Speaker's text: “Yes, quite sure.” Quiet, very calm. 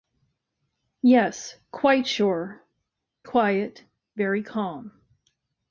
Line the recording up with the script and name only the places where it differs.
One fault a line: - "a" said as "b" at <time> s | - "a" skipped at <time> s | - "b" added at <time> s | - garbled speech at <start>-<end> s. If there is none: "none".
none